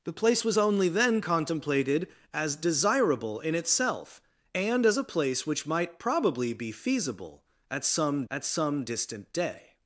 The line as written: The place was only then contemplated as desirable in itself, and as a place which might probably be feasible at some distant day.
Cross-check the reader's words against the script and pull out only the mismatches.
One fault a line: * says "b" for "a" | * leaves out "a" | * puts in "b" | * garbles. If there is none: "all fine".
* puts in "at some"